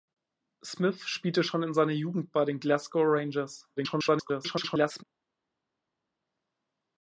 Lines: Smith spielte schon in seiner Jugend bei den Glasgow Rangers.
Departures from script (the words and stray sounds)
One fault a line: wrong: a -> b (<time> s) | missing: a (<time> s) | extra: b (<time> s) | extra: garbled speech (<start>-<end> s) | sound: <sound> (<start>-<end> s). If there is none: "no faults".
extra: garbled speech (3.8-5.0 s)